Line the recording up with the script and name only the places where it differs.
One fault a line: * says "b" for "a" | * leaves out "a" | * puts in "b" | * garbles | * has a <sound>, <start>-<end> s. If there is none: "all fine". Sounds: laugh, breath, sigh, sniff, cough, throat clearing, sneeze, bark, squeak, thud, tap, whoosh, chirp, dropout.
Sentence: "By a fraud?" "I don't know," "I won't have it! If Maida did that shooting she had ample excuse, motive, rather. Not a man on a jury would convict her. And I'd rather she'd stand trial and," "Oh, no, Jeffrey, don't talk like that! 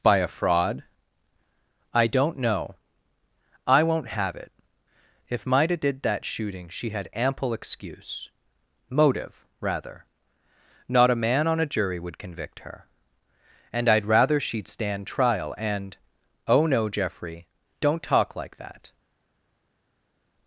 all fine